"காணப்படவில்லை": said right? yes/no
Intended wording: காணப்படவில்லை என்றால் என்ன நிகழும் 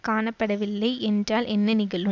yes